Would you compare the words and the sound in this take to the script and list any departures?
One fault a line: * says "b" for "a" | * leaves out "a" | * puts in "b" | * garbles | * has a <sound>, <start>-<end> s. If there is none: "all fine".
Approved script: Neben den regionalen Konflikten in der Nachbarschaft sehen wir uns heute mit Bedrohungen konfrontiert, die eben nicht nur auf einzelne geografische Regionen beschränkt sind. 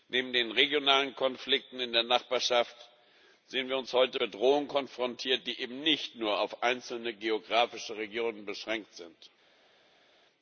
* leaves out "mit"